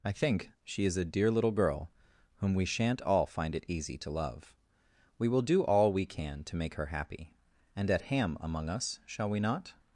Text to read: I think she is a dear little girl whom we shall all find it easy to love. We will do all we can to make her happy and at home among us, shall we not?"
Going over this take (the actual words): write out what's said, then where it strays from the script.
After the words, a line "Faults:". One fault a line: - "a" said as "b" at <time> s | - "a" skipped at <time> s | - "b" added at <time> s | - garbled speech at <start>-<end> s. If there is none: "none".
I think she is a dear little girl whom we shan't all find it easy to love. We will do all we can to make her happy and at ham among us, shall we not?"
Faults:
- "shall" said as "shan't" at 2.6 s
- "home" said as "ham" at 8.0 s